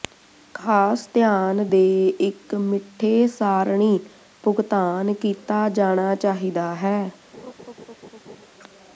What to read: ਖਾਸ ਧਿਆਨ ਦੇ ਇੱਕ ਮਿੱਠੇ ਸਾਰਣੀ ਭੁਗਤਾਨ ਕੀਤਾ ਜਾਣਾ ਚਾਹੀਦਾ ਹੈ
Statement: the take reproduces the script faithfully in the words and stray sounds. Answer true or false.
false